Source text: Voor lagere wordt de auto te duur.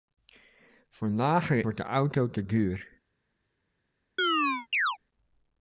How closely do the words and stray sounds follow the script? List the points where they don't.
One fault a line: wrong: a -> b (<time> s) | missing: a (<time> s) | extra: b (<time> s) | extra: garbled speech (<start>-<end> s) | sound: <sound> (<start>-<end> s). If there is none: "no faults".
sound: chirp (4.2-5.0 s)